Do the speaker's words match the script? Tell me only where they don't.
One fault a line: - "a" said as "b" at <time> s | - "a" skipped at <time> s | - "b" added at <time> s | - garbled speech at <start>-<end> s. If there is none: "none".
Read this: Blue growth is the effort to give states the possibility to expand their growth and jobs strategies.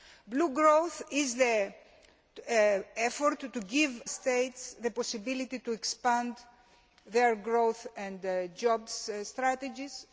none